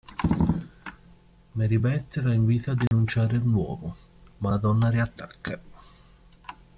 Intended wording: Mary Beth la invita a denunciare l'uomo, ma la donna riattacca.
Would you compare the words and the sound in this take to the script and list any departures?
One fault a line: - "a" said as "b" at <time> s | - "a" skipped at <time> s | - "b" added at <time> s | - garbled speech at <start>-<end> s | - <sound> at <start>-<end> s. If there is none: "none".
- dropout at 2.9-2.9 s